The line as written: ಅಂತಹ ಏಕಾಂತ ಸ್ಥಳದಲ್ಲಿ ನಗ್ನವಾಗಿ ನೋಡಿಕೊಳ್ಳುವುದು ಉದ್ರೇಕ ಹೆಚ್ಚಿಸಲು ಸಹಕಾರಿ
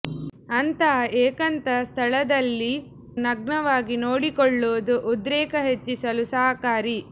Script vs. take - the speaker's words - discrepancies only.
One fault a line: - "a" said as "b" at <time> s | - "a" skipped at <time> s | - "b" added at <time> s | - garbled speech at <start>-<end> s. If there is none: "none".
none